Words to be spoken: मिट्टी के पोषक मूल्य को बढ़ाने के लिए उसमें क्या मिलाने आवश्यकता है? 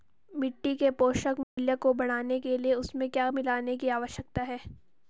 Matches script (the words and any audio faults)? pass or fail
fail